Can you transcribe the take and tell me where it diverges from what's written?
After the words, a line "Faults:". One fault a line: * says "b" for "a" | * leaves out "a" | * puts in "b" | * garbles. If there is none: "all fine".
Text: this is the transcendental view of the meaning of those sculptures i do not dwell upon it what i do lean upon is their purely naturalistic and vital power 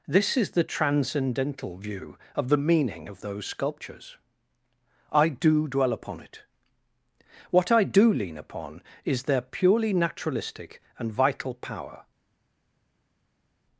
this is the transcendental view of the meaning of those sculptures i do dwell upon it what i do lean upon is their purely naturalistic and vital power
Faults:
* leaves out "not"